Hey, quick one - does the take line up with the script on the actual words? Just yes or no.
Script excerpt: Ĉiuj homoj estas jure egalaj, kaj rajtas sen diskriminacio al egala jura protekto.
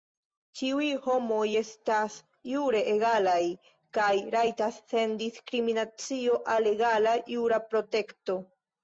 yes